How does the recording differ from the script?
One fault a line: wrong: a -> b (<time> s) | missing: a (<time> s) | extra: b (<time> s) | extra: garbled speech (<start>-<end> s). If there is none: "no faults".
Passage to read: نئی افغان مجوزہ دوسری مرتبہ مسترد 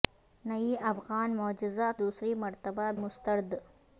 no faults